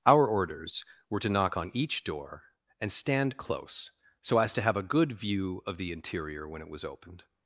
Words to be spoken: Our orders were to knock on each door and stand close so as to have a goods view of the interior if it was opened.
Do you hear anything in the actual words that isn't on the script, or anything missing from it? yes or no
yes